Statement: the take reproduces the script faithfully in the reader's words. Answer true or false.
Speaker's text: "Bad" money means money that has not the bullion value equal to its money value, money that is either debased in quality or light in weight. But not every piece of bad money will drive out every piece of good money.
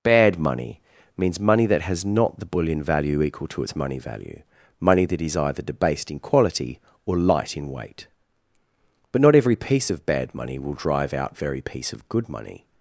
false